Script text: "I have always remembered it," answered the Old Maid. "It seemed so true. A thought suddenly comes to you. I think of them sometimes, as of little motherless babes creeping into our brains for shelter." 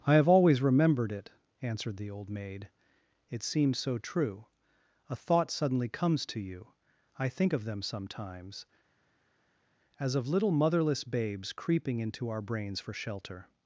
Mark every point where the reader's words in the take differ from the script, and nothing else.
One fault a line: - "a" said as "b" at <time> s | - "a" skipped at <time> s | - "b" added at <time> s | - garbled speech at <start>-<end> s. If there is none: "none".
- "seemed" said as "seems" at 3.4 s